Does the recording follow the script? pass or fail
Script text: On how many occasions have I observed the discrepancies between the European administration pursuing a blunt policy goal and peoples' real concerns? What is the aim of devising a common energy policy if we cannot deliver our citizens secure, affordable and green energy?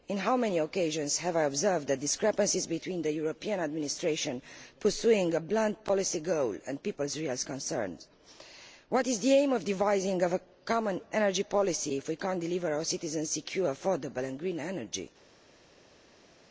pass